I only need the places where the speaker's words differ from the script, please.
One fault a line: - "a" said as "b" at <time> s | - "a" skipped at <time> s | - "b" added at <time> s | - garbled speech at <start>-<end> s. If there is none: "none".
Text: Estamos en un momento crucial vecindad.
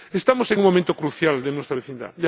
- "de nuestra" added at 1.4 s